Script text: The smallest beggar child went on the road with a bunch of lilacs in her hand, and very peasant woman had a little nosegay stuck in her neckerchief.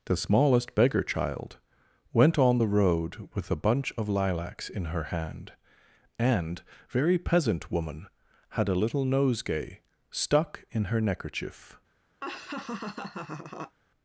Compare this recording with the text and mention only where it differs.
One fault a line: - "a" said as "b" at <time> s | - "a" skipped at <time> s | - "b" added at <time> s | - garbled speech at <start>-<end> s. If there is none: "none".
none